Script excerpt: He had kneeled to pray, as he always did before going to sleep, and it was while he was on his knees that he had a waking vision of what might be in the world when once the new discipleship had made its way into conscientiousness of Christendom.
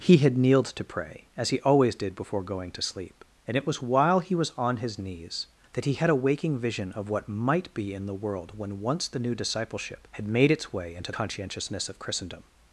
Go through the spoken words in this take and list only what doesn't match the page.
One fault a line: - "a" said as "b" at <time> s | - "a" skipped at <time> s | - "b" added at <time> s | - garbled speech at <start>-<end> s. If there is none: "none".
none